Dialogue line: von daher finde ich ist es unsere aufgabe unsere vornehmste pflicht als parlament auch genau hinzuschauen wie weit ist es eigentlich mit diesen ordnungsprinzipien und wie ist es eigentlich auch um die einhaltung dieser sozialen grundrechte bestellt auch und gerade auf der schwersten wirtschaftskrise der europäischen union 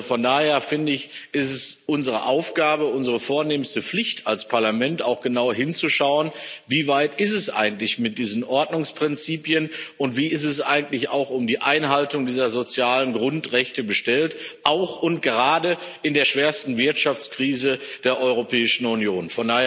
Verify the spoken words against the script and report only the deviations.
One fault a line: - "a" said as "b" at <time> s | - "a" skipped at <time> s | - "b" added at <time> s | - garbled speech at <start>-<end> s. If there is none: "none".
- "auf" said as "in" at 16.0 s